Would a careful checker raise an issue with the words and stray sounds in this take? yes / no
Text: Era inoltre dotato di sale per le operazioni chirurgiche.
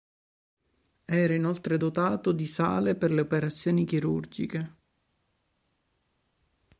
no